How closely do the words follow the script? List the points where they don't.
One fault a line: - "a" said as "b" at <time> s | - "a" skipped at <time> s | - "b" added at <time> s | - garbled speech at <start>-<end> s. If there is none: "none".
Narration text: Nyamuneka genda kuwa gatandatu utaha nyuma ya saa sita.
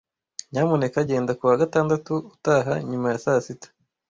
none